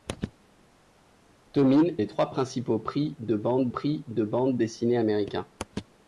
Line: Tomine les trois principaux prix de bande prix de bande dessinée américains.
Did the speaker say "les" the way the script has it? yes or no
yes